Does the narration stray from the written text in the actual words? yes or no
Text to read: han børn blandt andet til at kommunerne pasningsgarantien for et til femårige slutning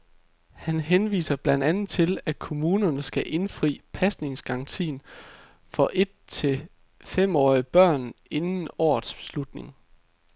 yes